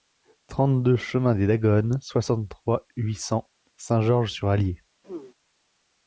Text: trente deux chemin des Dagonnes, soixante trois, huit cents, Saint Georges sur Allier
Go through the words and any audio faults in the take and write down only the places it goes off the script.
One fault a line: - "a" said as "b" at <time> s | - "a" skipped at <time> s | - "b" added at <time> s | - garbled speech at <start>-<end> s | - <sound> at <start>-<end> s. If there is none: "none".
- throat clearing at 5.0-5.3 s